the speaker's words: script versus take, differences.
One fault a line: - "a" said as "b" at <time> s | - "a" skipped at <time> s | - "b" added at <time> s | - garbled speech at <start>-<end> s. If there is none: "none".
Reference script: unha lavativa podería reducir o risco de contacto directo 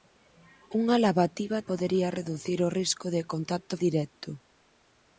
none